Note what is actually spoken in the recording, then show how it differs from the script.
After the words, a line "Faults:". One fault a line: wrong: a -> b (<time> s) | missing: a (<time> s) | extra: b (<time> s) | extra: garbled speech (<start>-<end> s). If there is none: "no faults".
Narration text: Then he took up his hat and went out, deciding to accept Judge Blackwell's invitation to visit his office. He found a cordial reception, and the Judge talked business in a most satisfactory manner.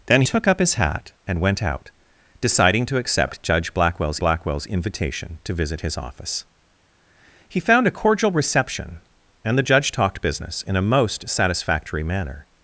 Then took up his hat and went out, deciding to accept Judge Blackwell's Blackwell's invitation to visit his office. He found a cordial reception, and the Judge talked business in a most satisfactory manner.
Faults:
missing: he (0.2 s)
extra: Blackwell's (4.2 s)